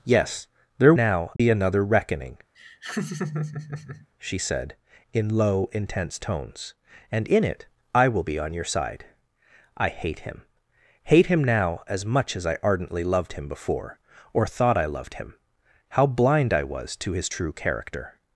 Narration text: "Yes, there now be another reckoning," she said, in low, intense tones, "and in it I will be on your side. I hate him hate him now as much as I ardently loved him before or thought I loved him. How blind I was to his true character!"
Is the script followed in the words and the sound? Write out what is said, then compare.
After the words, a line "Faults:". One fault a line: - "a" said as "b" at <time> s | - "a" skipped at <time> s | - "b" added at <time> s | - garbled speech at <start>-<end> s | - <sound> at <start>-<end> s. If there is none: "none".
"Yes, there now be another reckoning," she said, in low, intense tones, "and in it I will be on your side. I hate him hate him now as much as I ardently loved him before or thought I loved him. How blind I was to his true character!"
Faults:
- dropout at 1.4-1.4 s
- laugh at 2.5-4.1 s